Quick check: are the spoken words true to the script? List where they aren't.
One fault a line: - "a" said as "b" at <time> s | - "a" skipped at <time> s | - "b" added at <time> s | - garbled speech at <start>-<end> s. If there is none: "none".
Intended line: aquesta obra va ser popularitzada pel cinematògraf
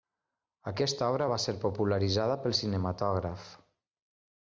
none